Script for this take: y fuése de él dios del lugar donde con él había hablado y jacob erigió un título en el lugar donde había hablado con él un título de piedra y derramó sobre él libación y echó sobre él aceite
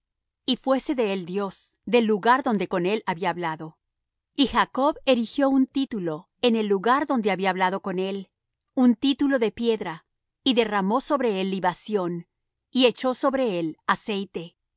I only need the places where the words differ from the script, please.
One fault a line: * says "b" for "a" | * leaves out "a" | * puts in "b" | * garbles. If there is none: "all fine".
all fine